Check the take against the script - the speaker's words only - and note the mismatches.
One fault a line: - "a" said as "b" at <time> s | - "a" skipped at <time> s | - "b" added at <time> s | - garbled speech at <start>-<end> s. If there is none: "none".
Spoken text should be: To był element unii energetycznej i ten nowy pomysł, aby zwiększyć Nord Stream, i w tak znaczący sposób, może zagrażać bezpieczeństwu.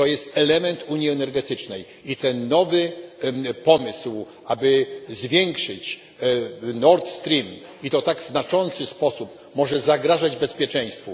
- "był" said as "jest" at 0.1 s
- "to" added at 7.9 s